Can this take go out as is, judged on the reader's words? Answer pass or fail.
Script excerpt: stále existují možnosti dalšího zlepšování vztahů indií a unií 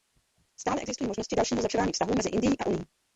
fail